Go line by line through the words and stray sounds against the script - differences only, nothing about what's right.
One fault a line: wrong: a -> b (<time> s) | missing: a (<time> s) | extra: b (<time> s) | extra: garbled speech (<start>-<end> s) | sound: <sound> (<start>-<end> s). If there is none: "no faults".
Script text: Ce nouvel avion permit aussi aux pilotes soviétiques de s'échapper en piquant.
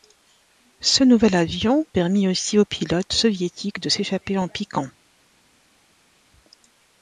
no faults